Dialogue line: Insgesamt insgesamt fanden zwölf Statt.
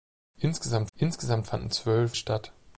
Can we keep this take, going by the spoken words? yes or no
yes